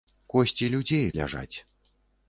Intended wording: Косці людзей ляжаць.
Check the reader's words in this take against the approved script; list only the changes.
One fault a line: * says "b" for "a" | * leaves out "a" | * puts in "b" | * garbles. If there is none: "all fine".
all fine